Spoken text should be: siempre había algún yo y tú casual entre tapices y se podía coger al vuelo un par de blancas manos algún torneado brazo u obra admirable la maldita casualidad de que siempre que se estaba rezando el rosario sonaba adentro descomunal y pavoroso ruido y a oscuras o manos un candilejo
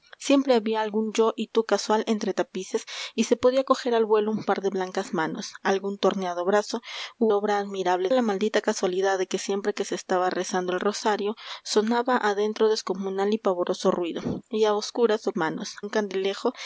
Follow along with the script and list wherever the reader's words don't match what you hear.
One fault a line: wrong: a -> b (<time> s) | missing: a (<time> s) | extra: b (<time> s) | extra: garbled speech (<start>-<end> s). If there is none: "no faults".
no faults